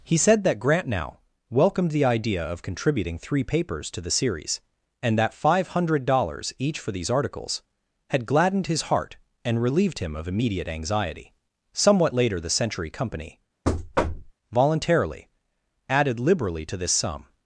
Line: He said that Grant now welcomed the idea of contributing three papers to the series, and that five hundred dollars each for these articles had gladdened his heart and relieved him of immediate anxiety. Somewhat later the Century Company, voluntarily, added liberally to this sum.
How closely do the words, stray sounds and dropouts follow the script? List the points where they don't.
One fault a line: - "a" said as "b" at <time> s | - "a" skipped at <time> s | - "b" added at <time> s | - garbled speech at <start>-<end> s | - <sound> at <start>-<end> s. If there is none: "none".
- thud at 13.6-14.3 s